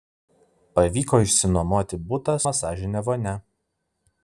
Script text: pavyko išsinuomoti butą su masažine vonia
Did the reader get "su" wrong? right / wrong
wrong